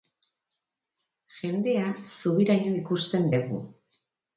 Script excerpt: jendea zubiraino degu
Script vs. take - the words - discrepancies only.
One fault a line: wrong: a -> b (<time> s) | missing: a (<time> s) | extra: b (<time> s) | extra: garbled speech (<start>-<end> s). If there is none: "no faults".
extra: ikusten (2.8 s)